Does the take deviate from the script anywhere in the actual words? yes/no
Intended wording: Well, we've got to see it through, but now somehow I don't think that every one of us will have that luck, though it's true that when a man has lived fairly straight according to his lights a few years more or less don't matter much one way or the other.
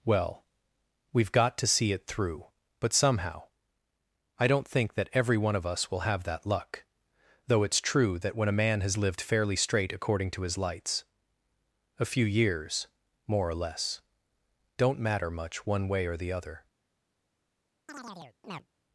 yes